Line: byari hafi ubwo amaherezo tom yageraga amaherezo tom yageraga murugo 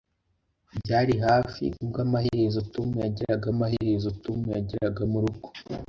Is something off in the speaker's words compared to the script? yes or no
no